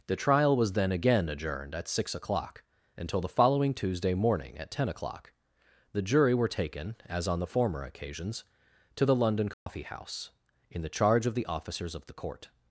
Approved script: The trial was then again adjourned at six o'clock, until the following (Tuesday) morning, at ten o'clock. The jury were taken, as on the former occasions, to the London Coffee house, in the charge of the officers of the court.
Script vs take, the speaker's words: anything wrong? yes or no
no